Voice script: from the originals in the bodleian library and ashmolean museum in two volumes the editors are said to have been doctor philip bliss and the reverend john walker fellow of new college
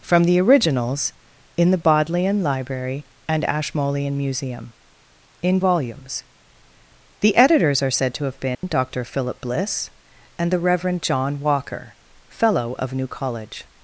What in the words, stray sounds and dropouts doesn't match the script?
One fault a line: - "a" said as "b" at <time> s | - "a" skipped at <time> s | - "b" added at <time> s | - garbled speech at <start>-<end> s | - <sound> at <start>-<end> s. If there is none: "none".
- "two" skipped at 5.6 s
- dropout at 8.5-8.6 s